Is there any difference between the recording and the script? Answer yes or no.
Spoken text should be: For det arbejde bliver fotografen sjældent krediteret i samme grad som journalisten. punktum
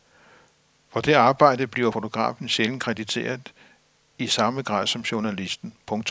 no